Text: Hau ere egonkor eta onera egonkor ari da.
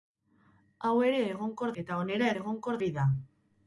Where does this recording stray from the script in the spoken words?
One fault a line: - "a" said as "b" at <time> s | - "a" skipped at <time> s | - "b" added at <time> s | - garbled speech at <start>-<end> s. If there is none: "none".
none